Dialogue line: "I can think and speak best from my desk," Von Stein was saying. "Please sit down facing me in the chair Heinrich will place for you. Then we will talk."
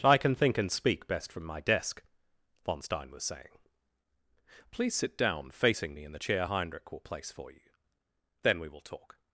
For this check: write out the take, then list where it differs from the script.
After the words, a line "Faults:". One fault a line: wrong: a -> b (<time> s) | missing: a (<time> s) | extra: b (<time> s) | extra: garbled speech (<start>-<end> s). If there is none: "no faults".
"I can think and speak best from my desk," Von Stein was saying. "Please sit down facing me in the chair Heinrich will place for you. Then we will talk."
Faults:
no faults